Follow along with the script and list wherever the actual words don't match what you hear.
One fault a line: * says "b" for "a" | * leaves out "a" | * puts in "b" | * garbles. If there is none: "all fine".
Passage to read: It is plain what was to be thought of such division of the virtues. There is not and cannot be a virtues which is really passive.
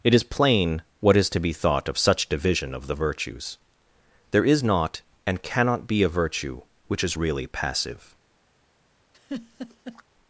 * says "is" for "was"
* says "virtue" for "virtues"